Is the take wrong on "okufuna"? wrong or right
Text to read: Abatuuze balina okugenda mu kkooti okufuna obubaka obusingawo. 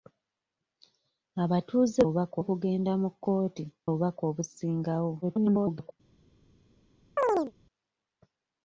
wrong